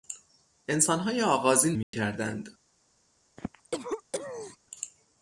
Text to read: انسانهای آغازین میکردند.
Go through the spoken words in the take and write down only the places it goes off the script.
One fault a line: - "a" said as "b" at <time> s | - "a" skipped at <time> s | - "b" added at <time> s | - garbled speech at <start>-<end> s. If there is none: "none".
none